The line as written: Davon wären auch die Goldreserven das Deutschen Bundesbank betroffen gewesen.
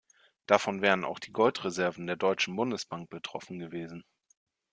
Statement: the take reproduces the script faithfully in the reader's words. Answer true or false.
false